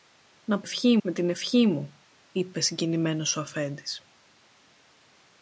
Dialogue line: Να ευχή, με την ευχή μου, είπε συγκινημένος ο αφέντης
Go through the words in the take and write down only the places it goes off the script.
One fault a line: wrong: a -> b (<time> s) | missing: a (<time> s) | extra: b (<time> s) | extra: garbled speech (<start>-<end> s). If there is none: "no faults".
no faults